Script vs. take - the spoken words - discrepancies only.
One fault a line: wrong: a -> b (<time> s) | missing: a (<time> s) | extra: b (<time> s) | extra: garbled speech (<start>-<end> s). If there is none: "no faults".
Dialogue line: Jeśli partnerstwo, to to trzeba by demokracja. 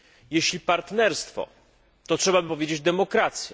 missing: to (2.2 s)
extra: powiedzieć (2.5 s)